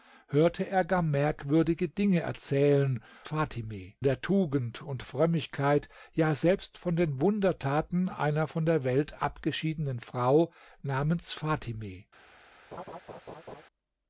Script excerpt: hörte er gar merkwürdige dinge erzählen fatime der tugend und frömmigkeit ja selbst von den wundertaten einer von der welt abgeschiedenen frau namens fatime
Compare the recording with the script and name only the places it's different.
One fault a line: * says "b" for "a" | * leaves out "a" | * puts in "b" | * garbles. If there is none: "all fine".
all fine